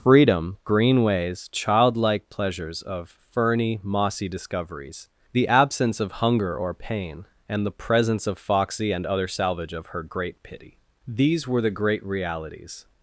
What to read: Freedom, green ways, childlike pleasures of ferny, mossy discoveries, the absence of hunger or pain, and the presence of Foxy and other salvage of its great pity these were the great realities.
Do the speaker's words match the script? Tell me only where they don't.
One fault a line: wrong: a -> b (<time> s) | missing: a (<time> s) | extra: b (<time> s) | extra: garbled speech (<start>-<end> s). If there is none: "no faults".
wrong: its -> her (9.9 s)